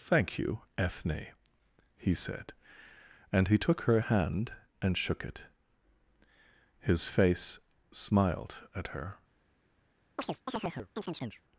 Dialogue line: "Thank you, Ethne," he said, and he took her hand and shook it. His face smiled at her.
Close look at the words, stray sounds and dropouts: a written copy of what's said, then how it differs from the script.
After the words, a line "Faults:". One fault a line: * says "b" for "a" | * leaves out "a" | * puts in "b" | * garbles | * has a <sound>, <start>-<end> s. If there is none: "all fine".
"Thank you, Ethne," he said, and he took her hand and shook it. His face smiled at her.
Faults:
* has a chirp, 10.2-11.4 s